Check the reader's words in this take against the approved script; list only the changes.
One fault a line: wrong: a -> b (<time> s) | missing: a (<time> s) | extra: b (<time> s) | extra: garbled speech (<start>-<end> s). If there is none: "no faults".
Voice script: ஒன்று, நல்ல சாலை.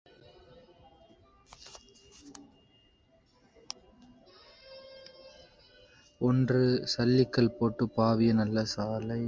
extra: சல்லிக்கல் போட்டுப் பாவிய (6.8 s)